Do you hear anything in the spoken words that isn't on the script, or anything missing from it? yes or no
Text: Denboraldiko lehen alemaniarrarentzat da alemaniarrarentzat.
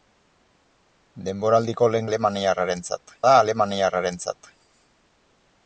no